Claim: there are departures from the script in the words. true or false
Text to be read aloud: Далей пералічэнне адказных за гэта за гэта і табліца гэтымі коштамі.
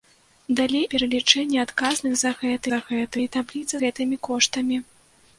false